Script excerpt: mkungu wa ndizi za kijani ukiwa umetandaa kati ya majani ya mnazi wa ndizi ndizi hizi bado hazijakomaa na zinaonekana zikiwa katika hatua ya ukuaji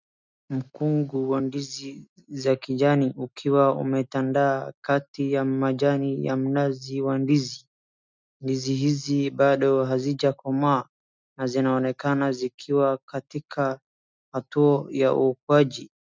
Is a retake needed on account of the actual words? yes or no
no